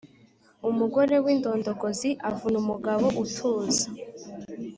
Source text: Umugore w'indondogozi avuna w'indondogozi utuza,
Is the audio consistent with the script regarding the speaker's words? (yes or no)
no